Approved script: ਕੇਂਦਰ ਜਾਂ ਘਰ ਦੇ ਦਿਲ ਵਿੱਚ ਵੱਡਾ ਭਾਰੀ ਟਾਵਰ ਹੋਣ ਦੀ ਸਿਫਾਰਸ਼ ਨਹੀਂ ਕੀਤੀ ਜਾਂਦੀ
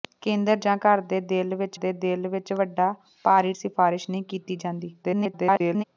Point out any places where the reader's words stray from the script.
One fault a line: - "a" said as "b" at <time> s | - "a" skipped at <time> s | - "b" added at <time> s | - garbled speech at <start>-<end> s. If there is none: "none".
- "ਵੱਡਾ ਭਾਰੀ ਟਾਵਰ ਹੋਣ ਦੀ" said as "ਦੇ ਦਿਲ ਵਿੱਚ ਵੱਡਾ ਭਾਰੀ" at 1.7 s
- garbled speech at 5.0-5.8 s